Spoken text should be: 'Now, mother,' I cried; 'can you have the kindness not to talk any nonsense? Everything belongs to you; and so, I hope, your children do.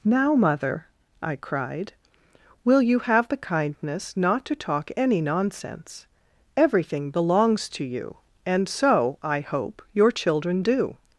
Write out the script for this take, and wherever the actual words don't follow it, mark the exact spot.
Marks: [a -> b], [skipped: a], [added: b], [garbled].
'Now, mother,' I cried; ['can -> will] you have the kindness not to talk any nonsense? Everything belongs to you; and so, I hope, your children do.